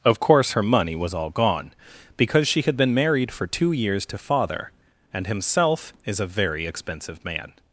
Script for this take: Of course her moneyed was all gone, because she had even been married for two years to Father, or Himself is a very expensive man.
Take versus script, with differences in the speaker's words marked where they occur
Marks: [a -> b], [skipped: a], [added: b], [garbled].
Of course her [moneyed -> money] was all gone, because she had [skipped: even] been married for two years to Father, [or -> and] Himself is a very expensive man.